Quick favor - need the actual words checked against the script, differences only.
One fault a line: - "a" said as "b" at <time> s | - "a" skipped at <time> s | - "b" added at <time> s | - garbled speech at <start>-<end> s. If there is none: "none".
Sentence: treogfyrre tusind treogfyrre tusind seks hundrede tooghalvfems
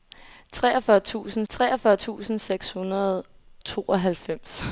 none